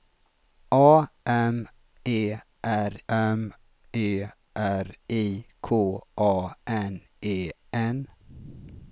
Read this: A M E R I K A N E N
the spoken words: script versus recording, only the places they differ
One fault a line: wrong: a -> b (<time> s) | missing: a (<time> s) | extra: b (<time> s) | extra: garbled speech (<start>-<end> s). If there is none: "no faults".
extra: M E R (3.1 s)